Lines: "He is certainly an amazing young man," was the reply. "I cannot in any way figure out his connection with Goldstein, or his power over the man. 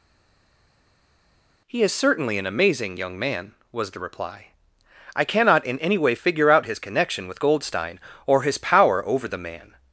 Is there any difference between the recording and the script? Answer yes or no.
no